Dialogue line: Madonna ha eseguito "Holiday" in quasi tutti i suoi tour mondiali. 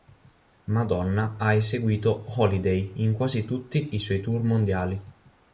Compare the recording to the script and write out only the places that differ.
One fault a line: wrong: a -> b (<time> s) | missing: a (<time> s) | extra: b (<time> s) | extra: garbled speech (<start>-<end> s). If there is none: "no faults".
no faults